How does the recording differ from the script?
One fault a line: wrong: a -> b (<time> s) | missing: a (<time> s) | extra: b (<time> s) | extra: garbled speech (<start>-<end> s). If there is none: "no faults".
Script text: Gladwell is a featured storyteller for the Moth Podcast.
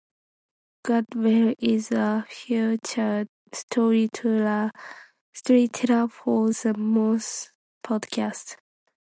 no faults